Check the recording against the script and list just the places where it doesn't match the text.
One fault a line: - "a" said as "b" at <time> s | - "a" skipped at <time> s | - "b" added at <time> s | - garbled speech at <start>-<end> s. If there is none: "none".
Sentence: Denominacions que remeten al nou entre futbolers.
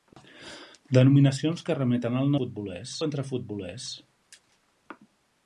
- "nou" said as "futbolers" at 2.4 s